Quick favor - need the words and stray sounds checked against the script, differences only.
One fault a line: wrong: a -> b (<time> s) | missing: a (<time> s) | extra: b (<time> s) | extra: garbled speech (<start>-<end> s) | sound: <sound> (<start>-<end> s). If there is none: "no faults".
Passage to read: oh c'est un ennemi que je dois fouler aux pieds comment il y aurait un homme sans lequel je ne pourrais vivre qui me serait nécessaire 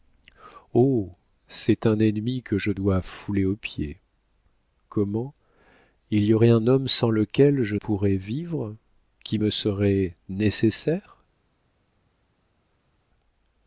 missing: ne (7.8 s)